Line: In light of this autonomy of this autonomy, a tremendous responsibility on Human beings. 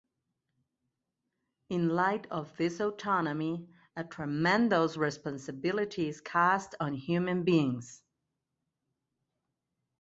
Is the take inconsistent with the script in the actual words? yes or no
yes